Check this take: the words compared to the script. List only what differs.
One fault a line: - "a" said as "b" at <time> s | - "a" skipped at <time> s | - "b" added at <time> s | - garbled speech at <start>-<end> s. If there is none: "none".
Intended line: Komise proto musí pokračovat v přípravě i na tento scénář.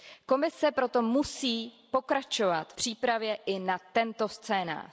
- "v" skipped at 2.7 s